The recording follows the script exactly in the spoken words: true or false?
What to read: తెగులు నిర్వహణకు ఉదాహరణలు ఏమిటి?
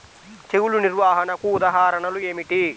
true